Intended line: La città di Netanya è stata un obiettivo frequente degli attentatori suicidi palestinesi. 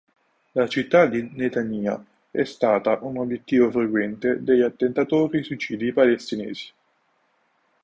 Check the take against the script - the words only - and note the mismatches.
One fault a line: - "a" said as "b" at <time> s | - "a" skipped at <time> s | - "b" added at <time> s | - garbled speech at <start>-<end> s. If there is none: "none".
none